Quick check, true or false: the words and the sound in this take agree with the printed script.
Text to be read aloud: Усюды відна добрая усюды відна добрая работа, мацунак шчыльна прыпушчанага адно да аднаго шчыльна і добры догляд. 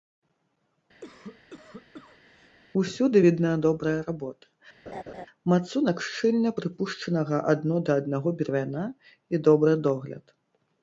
false